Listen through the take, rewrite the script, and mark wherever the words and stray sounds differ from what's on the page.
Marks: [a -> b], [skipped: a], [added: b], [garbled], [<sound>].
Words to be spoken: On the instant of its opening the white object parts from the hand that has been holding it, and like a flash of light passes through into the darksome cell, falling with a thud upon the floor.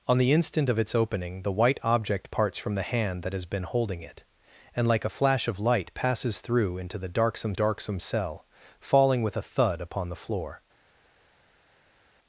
On the instant of its opening the white object parts from the hand that has been holding it, and like a flash of light passes through into the darksome [added: darksome] cell, falling with a thud upon the floor.